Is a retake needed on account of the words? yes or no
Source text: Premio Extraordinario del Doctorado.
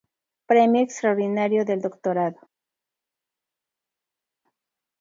no